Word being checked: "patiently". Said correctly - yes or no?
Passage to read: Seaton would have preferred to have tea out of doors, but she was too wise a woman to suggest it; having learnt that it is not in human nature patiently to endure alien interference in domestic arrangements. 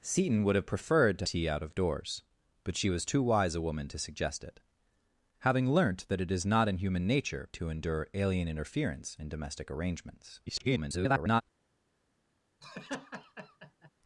no